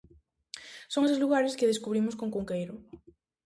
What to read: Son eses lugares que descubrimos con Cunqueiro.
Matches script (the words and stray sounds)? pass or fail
pass